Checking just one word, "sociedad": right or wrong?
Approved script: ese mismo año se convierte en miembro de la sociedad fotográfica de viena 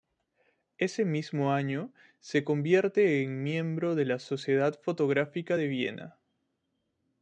right